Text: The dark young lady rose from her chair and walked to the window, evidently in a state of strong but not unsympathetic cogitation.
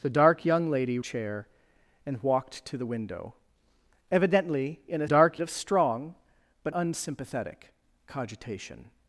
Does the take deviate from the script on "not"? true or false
true